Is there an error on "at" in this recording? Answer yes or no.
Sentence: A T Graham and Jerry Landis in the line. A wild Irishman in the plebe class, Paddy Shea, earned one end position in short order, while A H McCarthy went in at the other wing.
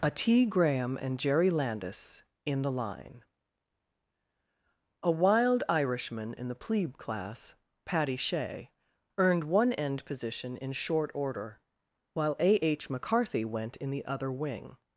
yes